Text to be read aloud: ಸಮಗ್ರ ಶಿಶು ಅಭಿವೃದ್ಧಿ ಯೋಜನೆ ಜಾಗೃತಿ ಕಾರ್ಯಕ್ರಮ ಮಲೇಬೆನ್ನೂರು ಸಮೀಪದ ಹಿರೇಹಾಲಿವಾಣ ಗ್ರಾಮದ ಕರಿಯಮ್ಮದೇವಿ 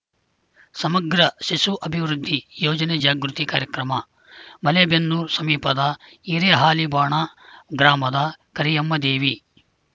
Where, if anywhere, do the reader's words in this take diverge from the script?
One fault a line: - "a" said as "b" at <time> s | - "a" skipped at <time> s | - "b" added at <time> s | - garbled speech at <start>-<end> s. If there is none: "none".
none